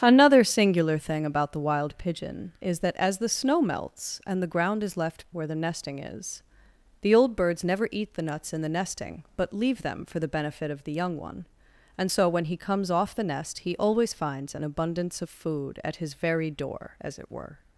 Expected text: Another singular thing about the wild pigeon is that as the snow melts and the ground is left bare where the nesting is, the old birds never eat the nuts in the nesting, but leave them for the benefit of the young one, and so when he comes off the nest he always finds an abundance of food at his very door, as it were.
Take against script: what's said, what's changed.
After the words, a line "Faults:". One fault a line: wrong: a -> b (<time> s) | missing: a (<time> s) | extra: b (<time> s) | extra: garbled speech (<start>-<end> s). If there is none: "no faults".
Another singular thing about the wild pigeon is that as the snow melts and the ground is left where the nesting is, the old birds never eat the nuts in the nesting, but leave them for the benefit of the young one, and so when he comes off the nest he always finds an abundance of food at his very door, as it were.
Faults:
missing: bare (5.2 s)